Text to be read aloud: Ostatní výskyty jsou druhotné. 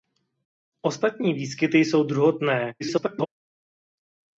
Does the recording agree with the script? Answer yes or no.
no